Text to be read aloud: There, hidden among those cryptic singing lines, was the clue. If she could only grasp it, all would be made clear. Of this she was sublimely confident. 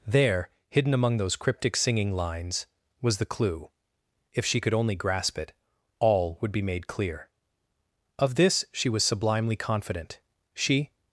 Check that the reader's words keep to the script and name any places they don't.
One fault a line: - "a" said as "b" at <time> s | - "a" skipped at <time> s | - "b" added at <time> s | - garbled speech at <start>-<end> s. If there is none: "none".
- "She" added at 10.5 s